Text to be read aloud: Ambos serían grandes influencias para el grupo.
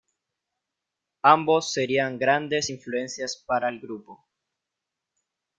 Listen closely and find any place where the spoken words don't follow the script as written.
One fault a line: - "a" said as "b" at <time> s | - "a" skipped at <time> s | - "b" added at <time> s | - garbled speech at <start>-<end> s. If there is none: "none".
none